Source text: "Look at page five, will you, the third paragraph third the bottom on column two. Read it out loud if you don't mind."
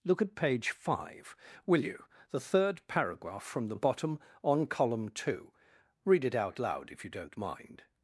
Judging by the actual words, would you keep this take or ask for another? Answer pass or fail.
fail